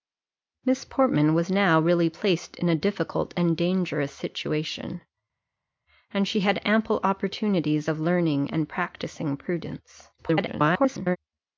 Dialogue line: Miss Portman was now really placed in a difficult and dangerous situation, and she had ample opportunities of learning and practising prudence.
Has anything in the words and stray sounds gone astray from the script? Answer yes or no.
yes